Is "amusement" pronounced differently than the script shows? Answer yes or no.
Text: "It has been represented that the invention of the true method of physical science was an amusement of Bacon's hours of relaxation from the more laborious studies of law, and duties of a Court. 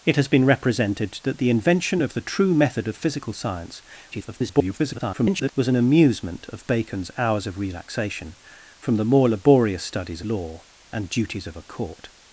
no